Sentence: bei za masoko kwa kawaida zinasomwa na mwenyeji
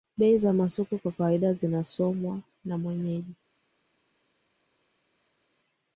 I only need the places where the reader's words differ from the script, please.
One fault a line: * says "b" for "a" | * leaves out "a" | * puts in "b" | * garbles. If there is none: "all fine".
all fine